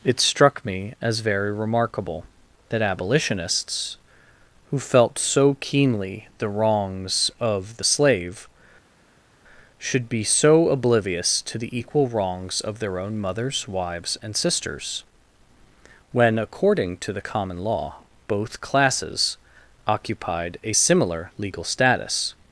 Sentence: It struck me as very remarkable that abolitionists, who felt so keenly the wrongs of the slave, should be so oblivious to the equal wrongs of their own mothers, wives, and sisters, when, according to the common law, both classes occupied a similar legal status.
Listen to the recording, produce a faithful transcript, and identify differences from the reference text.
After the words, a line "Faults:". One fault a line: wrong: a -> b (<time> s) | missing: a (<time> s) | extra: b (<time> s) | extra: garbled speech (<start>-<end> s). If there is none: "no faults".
It struck me as very remarkable that abolitionists, who felt so keenly the wrongs of the slave, should be so oblivious to the equal wrongs of their own mothers, wives, and sisters, when, according to the common law, both classes occupied a similar legal status.
Faults:
no faults